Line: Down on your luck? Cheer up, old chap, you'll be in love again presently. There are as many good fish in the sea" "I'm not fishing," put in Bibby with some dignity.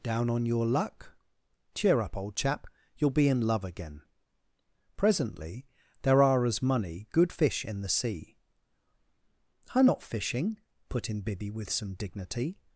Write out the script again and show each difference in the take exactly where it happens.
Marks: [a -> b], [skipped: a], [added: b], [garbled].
Down on your luck? Cheer up, old chap, you'll be in love again presently. There are as [many -> money] good fish in the sea" "I'm not fishing," put in Bibby with some dignity.